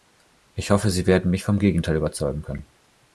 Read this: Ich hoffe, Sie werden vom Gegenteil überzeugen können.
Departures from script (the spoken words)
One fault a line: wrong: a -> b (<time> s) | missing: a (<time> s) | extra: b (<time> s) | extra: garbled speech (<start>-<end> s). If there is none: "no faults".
extra: mich (1.3 s)